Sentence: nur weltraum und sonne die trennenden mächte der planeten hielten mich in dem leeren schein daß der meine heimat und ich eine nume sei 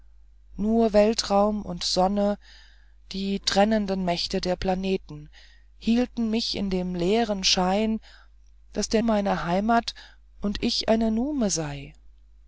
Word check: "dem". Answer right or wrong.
right